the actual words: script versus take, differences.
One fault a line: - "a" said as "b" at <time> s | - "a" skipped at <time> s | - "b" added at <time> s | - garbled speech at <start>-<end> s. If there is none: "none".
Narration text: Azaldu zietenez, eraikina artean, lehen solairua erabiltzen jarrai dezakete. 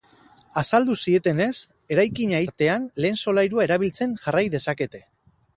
none